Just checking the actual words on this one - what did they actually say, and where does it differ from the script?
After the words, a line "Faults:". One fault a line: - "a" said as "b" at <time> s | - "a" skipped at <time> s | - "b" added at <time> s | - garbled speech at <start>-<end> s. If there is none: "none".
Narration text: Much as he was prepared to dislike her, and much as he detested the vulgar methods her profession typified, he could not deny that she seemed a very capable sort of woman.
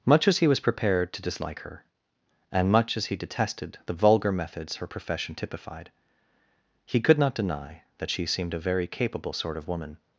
Much as he was prepared to dislike her, and much as he detested the vulgar methods her profession typified, he could not deny that she seemed a very capable sort of woman.
Faults:
none